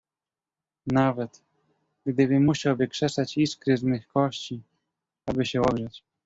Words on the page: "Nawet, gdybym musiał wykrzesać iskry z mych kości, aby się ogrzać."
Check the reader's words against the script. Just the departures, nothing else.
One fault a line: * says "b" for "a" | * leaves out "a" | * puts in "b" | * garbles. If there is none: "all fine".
all fine